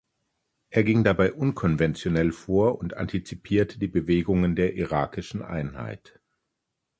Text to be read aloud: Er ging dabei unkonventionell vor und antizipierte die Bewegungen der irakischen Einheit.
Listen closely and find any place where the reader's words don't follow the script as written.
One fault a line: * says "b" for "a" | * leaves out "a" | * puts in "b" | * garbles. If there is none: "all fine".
all fine